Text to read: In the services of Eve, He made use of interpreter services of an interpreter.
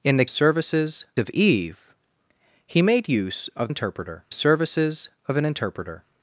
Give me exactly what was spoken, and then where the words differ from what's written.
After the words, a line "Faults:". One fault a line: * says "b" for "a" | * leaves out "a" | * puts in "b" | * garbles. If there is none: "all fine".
In the services of Eve, He made use of interpreter services of an interpreter.
Faults:
all fine